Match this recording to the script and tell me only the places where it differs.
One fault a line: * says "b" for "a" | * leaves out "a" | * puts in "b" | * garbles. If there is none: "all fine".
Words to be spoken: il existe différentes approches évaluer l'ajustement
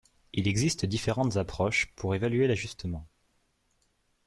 * puts in "pour"